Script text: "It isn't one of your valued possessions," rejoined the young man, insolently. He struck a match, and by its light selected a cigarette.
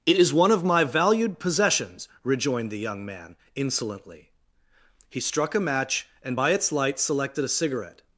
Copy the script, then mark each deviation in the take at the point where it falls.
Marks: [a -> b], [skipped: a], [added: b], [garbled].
"It [isn't -> is] one of [your -> my] valued possessions," rejoined the young man, insolently. He struck a match, and by its light selected a cigarette.